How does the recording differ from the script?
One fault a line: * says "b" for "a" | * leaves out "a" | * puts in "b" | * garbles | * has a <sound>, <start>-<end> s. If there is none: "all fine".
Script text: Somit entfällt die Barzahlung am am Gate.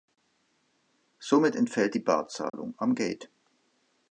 * has a dropout, 2.5-2.5 s
* leaves out "am"